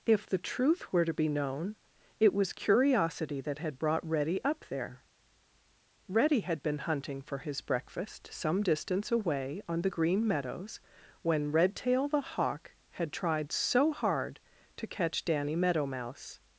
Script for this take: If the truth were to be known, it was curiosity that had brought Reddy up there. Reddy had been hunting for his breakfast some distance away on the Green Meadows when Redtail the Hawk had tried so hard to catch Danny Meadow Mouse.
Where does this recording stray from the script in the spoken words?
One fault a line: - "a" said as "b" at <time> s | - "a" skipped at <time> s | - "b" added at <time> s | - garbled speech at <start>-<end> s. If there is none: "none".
none